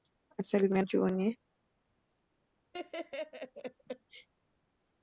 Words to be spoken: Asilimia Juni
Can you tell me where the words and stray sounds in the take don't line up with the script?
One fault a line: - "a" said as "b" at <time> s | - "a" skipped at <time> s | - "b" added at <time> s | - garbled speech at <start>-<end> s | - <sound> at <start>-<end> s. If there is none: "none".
- laugh at 2.7-4.3 s